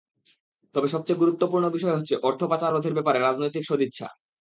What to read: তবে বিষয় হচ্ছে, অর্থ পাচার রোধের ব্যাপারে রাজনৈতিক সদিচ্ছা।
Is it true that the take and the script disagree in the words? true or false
true